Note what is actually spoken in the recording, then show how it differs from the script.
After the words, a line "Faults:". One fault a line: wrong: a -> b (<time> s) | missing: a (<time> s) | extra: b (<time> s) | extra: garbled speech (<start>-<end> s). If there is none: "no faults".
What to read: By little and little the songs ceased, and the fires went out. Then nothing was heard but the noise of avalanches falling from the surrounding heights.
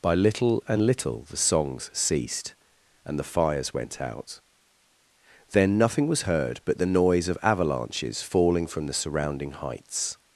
By little and little the songs ceased, and the fires went out. Then nothing was heard but the noise of avalanches falling from the surrounding heights.
Faults:
no faults